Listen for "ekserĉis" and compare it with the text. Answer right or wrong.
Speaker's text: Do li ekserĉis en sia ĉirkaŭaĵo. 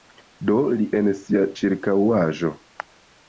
wrong